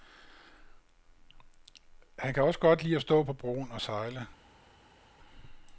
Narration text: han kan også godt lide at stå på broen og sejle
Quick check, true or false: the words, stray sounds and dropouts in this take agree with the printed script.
true